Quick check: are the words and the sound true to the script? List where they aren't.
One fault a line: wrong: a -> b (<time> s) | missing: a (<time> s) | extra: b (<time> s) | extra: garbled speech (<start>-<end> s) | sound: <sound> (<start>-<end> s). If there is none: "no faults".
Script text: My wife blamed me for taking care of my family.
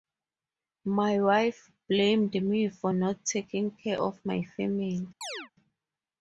extra: not (2.9 s)
sound: chirp (5.2-5.5 s)